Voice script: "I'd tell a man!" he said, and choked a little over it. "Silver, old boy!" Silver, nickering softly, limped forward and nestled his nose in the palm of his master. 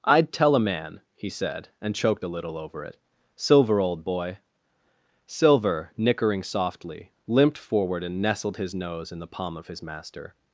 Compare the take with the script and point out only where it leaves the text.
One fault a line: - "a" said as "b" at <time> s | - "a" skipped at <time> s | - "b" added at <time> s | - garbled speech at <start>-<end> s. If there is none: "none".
none